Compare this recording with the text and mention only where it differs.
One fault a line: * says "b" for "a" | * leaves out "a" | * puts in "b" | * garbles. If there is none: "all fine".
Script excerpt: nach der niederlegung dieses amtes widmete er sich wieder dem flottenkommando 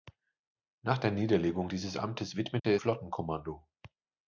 * leaves out "sich wieder dem"